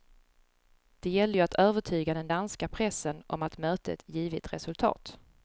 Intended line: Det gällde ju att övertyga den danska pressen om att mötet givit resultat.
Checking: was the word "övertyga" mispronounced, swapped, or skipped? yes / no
no